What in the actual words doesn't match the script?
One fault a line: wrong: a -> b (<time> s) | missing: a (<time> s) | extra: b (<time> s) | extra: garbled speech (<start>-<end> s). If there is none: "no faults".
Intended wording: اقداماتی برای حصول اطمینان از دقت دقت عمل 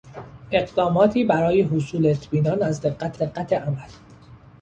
no faults